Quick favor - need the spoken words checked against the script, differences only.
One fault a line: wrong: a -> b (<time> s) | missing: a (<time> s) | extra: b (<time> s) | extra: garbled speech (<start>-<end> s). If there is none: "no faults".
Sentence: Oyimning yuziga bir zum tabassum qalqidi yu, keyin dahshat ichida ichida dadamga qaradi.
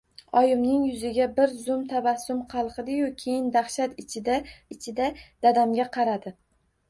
no faults